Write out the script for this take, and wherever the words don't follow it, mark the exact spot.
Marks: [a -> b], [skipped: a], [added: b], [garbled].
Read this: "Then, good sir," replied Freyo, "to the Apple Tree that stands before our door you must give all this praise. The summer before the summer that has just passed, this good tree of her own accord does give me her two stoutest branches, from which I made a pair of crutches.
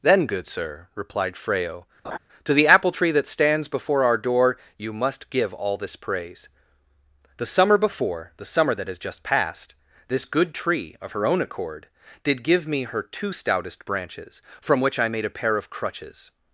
"Then, good sir," replied Freyo, "to the Apple Tree that stands before our door you must give all this praise. The summer before the summer that has just passed, this good tree of her own accord [does -> did] give me her two stoutest branches, from which I made a pair of crutches.